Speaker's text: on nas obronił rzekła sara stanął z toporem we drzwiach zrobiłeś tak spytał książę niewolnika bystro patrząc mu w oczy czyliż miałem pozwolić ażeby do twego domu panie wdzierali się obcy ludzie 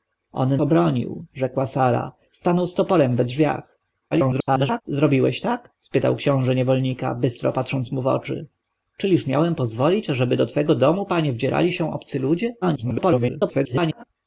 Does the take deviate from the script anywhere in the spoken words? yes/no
yes